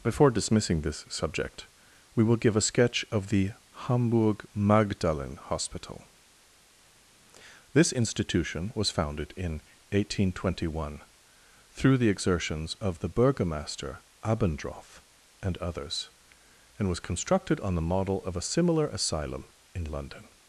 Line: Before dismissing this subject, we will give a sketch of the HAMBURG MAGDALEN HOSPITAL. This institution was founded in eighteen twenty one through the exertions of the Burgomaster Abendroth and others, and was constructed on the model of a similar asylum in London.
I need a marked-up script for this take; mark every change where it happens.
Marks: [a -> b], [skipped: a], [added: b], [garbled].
Before dismissing this subject, we will give a sketch of the HAMBURG MAGDALEN HOSPITAL. This institution was founded in eighteen twenty one through the exertions of the Burgomaster Abendroth and others, and was constructed on the model of a similar asylum in London.